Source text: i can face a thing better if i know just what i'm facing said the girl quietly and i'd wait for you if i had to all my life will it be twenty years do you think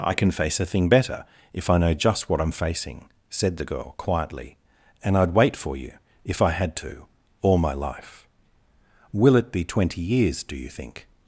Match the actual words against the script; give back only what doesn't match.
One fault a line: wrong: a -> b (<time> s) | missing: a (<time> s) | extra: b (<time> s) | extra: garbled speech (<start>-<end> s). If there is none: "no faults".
no faults